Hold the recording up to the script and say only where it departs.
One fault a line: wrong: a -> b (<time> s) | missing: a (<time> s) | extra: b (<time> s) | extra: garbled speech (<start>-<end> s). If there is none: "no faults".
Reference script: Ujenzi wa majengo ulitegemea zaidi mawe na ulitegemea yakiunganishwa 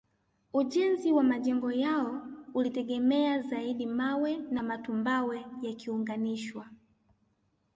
extra: yao (1.7 s)
wrong: ulitegemea -> matumbawe (4.6 s)